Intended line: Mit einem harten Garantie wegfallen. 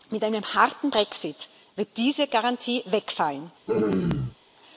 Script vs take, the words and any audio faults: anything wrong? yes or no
yes